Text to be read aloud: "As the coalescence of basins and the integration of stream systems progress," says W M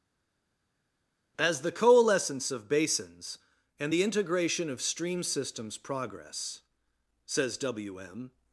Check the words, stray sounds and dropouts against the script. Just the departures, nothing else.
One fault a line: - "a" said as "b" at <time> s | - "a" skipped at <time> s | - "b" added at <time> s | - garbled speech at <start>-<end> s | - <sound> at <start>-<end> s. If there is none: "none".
none